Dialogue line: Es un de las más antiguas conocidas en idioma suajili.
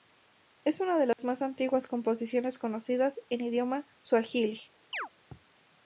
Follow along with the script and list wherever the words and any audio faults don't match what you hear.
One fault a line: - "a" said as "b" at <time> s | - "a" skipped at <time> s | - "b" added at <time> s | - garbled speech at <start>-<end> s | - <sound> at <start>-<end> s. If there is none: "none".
- "un" said as "una" at 0.8 s
- dropout at 1.1-1.2 s
- "composiciones" added at 1.9 s
- chirp at 4.9-5.1 s